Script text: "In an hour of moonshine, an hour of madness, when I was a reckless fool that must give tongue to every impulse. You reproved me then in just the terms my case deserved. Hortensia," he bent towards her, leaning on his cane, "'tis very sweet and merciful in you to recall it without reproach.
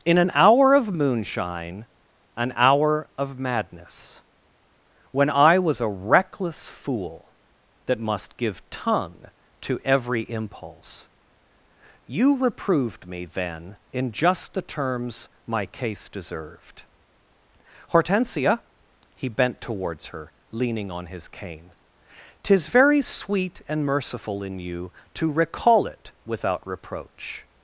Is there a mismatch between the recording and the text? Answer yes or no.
no